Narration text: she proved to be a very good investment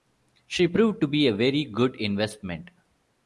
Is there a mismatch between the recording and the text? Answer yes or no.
no